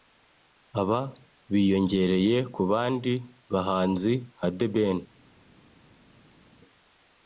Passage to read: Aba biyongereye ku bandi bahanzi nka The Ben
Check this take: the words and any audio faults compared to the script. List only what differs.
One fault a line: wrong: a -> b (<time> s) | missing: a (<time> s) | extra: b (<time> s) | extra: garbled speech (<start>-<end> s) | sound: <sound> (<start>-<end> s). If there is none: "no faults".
no faults